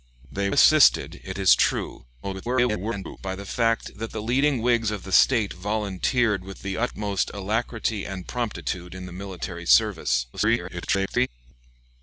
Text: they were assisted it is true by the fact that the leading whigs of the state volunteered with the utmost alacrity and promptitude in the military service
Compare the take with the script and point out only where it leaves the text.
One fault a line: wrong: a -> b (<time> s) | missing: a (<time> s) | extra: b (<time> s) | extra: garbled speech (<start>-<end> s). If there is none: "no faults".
missing: were (0.5 s)
extra: garbled speech (2.2-3.2 s)
extra: garbled speech (10.3-11.3 s)